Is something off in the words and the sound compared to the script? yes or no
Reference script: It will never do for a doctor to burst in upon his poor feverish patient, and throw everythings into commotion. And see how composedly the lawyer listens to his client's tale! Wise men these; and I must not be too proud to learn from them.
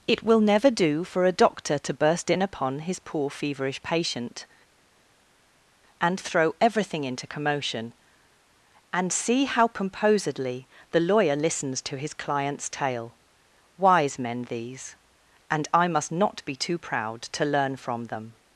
yes